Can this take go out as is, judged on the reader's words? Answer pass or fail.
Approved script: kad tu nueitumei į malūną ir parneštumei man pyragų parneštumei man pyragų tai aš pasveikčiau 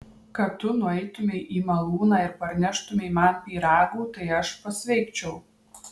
fail